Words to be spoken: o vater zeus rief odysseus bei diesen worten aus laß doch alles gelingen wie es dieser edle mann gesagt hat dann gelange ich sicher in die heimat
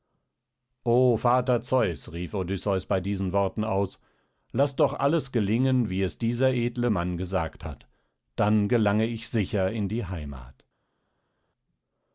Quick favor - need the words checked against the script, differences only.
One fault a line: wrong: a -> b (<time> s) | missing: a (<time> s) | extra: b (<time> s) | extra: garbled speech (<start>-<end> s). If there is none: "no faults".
no faults